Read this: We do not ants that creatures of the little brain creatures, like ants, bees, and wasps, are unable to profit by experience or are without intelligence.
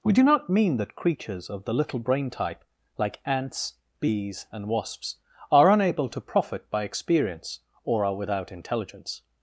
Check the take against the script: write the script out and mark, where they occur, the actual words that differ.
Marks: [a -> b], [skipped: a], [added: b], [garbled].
We do not [ants -> mean] that creatures of the little brain [creatures, -> type] like ants, bees, and wasps, are unable to profit by experience or are without intelligence.